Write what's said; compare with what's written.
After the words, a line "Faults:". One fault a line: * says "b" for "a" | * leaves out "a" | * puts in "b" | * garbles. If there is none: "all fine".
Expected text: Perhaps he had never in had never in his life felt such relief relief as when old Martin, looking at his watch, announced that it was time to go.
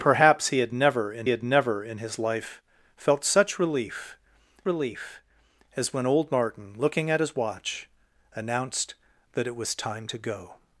Perhaps he had never in had never in his life felt such relief relief as when old Martin, looking at his watch, announced that it was time to go.
Faults:
all fine